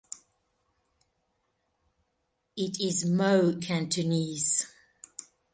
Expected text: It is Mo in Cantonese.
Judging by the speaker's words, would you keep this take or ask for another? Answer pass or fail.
fail